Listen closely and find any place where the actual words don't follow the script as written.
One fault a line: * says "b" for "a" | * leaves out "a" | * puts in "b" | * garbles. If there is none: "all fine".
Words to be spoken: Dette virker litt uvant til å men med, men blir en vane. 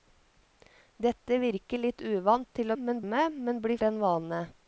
all fine